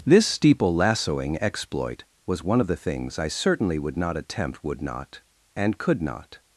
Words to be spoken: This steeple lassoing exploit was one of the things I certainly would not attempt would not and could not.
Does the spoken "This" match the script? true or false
true